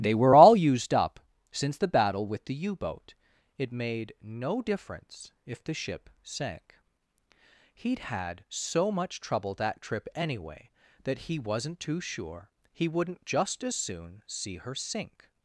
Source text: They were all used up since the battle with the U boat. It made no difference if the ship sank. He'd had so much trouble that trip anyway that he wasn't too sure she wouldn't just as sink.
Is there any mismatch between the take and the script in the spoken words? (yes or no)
yes